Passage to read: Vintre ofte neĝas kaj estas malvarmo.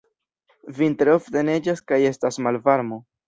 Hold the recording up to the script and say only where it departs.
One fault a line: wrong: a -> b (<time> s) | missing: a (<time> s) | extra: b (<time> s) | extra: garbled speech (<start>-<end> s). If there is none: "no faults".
no faults